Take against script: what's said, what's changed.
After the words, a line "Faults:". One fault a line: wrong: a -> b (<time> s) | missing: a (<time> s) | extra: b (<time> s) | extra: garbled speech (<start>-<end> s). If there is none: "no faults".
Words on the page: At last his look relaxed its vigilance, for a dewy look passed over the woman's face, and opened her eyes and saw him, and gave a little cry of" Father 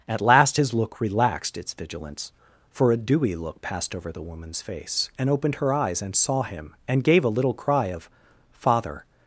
At last his look relaxed its vigilance, for a dewy look passed over the woman's face, and opened her eyes and saw him, and gave a little cry of" Father
Faults:
no faults